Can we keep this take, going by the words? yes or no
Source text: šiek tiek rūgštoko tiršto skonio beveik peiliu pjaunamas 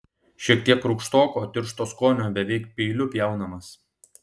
yes